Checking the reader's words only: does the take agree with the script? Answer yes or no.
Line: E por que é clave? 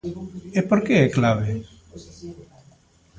yes